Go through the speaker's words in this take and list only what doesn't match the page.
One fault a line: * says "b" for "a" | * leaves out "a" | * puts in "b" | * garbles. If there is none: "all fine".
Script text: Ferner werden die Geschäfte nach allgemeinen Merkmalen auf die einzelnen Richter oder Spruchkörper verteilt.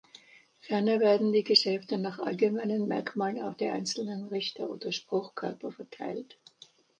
all fine